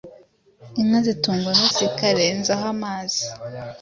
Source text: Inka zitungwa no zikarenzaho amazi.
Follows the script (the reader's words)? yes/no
yes